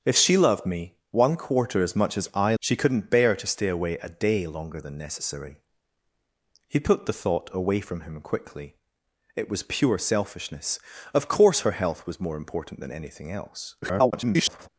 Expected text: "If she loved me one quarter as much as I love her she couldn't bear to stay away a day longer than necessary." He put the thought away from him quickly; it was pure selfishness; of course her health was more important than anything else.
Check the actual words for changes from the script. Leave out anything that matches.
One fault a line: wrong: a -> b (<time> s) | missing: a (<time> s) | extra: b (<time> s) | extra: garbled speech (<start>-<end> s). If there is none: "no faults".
missing: love her (2.5 s)
extra: garbled speech (13.8-14.7 s)